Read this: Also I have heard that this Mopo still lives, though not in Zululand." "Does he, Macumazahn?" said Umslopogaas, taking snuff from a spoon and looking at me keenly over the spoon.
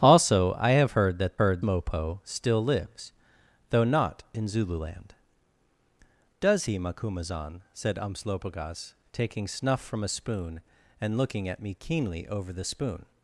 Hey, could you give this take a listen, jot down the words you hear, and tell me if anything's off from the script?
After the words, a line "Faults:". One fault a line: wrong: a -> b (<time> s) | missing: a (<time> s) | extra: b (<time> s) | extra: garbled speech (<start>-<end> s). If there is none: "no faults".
Also I have heard that heard Mopo still lives, though not in Zululand." "Does he, Macumazahn?" said Umslopogaas, taking snuff from a spoon and looking at me keenly over the spoon.
Faults:
wrong: this -> heard (1.4 s)